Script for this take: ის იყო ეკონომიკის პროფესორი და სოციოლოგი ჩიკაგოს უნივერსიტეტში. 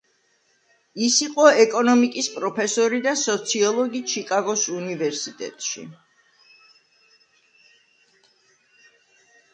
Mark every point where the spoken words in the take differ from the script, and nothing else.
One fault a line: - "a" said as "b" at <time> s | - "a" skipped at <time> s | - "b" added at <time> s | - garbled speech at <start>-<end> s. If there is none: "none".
none